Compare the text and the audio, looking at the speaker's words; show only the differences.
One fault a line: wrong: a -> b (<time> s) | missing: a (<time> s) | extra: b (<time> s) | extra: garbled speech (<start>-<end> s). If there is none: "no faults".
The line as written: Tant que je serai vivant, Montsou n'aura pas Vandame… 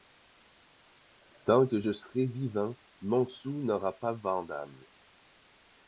no faults